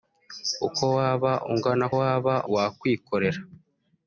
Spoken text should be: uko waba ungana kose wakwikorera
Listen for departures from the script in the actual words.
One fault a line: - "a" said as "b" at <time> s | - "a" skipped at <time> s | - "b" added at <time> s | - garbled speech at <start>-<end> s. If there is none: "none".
- "kose" said as "waba" at 2.0 s